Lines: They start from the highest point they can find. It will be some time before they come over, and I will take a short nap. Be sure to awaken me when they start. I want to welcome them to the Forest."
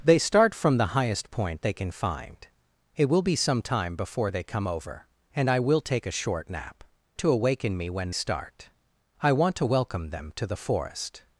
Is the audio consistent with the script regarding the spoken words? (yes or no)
no